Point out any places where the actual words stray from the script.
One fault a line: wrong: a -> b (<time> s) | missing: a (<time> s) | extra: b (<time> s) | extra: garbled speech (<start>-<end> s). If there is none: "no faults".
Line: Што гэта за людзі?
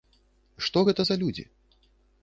no faults